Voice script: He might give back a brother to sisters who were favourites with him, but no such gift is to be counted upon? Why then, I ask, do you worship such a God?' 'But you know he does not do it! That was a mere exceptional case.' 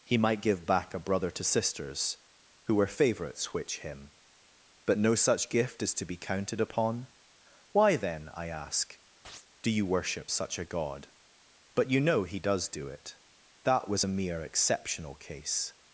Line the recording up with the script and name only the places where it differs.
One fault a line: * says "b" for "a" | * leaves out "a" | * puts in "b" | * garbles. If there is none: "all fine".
* says "which" for "with"
* leaves out "not"